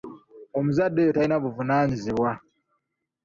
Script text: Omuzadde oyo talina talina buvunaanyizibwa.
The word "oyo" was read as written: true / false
true